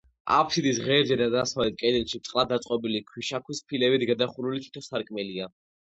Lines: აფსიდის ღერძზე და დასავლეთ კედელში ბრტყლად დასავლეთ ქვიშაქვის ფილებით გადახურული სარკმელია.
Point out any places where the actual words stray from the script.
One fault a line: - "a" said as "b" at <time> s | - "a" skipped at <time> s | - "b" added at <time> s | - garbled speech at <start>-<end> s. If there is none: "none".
- "დასავლეთ" said as "დაწყობილი" at 2.5 s
- "თითო" added at 4.7 s